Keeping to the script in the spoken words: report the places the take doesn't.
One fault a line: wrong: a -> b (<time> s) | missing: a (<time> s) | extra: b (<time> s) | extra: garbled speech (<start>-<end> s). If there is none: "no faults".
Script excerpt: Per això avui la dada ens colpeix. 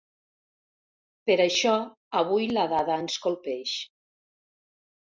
no faults